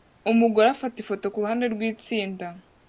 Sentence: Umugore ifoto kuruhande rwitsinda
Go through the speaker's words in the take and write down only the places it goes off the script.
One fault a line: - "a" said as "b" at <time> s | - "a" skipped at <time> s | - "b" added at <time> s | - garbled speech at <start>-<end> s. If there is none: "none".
- "afata" added at 0.7 s